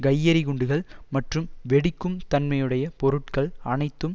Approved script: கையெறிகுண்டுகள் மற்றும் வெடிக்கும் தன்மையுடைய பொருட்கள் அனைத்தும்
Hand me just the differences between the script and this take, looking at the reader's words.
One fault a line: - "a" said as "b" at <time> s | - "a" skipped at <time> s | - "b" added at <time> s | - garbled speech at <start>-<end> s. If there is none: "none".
none